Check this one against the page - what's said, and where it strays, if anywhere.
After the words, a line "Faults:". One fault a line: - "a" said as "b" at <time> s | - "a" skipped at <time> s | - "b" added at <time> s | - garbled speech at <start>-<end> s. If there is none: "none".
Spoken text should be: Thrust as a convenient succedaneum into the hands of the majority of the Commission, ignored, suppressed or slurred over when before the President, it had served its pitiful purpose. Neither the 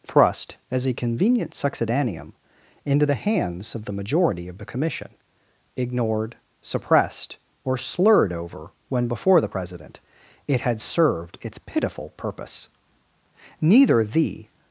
Thrust as a convenient succedaneum into the hands of the majority of the Commission, ignored, suppressed or slurred over when before the President, it had served its pitiful purpose. Neither the
Faults:
none